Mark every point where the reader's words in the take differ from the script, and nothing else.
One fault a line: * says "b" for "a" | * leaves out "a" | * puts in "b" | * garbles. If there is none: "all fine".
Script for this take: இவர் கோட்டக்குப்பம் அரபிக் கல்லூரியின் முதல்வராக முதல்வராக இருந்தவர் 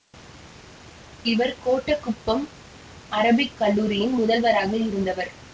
* leaves out "முதல்வராக"